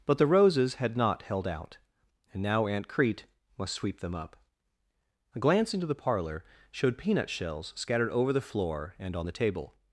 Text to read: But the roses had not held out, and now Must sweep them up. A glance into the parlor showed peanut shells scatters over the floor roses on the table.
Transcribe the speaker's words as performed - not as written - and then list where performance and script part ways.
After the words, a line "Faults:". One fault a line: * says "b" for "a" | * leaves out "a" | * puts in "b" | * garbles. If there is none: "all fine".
But the roses had not held out, and now Aunt Crete must sweep them up. A glance into the parlor showed peanut shells scattered over the floor and on the table.
Faults:
* puts in "Aunt Crete"
* says "scattered" for "scatters"
* says "and" for "roses"